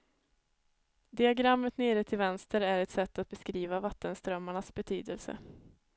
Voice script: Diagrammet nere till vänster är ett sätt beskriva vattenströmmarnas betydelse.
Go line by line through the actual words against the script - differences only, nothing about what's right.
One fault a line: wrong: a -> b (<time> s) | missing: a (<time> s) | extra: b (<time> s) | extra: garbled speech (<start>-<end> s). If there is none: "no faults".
extra: att (3.2 s)